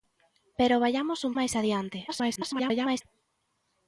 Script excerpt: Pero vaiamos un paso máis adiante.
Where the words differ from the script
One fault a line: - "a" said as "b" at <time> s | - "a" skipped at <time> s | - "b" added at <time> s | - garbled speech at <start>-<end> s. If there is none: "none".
- "paso" skipped at 1.3 s
- garbled speech at 2.1-3.0 s